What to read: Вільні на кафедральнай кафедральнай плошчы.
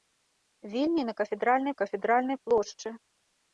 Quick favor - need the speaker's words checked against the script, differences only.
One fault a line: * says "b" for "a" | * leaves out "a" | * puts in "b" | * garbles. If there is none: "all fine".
all fine